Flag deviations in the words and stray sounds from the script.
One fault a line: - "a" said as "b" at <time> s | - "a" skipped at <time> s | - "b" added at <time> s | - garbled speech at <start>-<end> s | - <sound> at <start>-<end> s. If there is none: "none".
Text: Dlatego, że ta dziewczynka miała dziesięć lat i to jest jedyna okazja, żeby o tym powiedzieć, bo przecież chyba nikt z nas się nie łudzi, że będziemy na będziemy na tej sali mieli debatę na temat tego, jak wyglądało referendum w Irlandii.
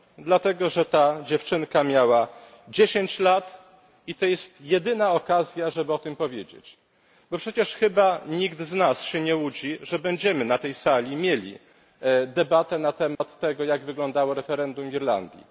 - "będziemy na" skipped at 10.6 s
- dropout at 13.1-13.2 s